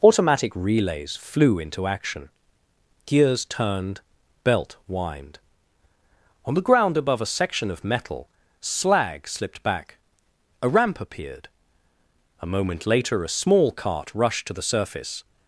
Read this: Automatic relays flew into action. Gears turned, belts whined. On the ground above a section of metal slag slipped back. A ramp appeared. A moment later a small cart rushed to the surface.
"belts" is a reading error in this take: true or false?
true